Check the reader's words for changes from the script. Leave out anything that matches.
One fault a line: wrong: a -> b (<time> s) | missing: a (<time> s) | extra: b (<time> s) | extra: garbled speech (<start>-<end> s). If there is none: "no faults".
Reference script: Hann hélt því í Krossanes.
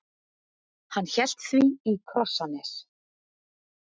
no faults